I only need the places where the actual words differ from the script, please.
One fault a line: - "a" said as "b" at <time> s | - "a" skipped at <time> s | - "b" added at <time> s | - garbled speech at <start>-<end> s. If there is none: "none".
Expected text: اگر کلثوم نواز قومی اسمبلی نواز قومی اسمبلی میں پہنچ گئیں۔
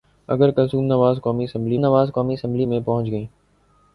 none